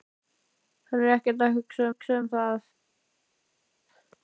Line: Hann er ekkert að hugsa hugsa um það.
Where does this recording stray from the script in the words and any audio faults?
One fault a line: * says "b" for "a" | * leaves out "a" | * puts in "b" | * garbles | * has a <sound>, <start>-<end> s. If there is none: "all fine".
all fine